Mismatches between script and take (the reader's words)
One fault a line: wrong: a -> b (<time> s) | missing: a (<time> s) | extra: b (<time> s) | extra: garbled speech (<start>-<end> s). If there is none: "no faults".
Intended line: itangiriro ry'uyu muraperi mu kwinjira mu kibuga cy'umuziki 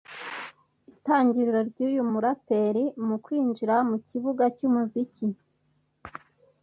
no faults